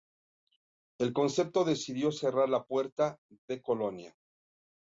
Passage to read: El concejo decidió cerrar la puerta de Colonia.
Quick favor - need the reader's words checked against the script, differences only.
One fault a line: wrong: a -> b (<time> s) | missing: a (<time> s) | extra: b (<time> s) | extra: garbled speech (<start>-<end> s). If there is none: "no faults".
no faults